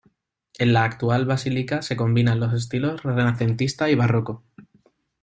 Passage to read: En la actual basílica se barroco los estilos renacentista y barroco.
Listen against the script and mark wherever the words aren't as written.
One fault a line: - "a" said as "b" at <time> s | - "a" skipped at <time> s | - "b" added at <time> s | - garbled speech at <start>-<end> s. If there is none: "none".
- "barroco" said as "combinan" at 1.9 s